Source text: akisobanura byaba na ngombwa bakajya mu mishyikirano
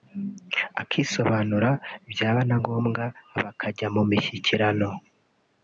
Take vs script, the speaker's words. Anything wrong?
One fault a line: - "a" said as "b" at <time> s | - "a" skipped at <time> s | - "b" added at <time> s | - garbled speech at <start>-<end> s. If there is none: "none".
none